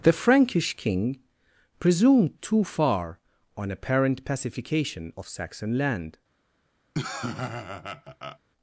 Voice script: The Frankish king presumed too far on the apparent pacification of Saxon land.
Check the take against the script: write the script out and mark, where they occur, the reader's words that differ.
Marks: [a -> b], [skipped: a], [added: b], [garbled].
The Frankish king presumed too far on [skipped: the] apparent pacification of Saxon land.